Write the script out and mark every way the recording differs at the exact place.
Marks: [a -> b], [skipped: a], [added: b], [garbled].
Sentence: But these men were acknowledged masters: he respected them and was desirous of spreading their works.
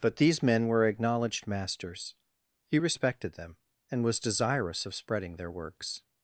But these men were acknowledged masters: he respected them and was desirous of spreading their works.